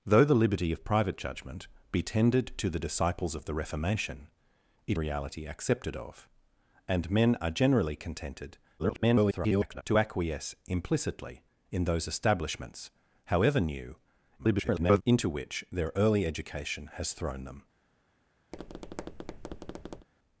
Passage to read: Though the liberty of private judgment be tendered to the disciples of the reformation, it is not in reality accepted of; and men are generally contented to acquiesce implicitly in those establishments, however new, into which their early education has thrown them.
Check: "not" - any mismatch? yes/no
yes